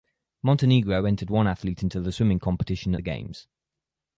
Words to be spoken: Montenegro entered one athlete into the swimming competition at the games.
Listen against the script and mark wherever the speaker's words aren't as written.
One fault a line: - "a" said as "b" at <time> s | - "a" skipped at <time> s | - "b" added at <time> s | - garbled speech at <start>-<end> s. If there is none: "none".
none